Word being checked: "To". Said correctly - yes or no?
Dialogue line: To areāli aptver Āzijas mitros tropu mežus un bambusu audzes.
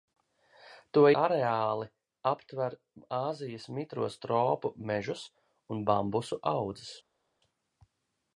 yes